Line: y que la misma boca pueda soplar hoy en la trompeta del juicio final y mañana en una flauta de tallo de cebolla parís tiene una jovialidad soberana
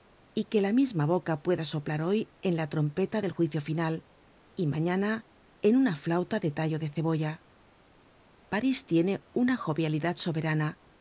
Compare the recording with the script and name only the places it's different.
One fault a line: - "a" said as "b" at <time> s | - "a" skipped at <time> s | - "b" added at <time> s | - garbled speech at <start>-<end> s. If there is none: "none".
none